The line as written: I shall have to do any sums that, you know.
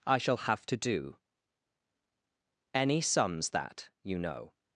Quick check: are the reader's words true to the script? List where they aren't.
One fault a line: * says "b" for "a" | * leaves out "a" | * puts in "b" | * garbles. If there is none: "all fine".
all fine